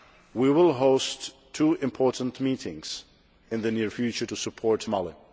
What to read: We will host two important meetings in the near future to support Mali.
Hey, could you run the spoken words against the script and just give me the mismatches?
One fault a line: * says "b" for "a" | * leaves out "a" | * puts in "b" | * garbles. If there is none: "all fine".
all fine